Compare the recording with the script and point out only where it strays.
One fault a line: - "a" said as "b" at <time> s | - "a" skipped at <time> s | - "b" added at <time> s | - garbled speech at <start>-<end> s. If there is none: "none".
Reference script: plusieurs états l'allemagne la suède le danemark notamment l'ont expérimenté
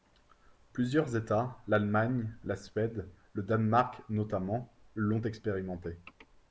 none